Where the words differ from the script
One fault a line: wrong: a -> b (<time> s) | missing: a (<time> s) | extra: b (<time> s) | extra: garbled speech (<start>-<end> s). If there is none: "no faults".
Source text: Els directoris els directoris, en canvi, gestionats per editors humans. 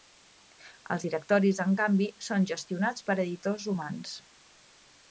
missing: els directoris (1.6 s)
extra: són (2.3 s)